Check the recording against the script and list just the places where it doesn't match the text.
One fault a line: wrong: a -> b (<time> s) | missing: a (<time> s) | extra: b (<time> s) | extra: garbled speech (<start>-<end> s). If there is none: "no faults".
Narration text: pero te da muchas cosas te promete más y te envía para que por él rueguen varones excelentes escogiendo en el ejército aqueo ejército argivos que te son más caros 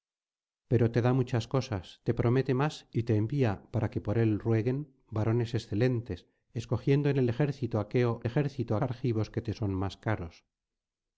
no faults